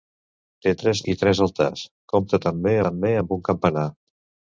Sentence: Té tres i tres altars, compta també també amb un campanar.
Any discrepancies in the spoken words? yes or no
no